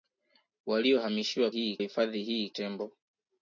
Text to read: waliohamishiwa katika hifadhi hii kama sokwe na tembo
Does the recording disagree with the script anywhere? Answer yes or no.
yes